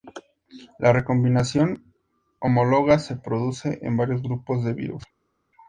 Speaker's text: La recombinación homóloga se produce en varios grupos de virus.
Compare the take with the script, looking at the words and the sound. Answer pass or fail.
pass